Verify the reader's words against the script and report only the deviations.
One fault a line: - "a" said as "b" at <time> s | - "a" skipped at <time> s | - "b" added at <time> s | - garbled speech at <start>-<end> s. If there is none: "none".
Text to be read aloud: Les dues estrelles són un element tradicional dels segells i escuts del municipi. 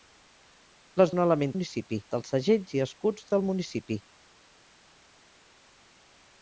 - "dues estrelles són" skipped at 1.1 s
- "tradicional" said as "municipi" at 1.5 s